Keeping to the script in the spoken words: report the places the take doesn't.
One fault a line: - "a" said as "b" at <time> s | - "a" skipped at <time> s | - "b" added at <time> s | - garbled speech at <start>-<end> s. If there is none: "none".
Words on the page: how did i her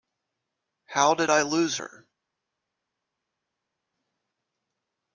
- "lose" added at 1.4 s